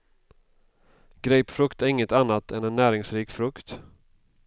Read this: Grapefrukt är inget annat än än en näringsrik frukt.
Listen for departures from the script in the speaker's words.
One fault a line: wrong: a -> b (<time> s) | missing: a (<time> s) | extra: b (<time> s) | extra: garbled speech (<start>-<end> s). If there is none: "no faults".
missing: än (2.6 s)